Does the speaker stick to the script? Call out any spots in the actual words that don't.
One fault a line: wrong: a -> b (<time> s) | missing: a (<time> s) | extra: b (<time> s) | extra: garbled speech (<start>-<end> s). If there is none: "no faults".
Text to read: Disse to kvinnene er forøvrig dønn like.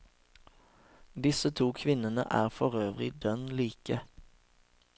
no faults